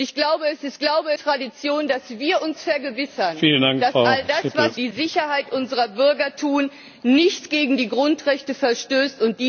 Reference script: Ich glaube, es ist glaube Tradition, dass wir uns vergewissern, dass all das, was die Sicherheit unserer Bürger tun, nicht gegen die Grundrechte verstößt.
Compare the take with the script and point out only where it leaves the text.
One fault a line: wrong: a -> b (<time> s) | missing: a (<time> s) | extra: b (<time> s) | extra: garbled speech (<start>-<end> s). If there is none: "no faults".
no faults